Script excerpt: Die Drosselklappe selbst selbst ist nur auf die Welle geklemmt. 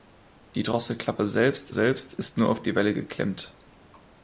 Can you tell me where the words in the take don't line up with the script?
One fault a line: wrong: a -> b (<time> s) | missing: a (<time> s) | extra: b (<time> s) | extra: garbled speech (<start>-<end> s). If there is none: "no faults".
no faults